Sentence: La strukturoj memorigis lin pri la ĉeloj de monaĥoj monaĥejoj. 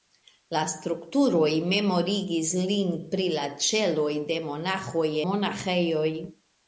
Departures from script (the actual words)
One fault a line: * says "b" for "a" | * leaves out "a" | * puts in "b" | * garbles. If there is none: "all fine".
all fine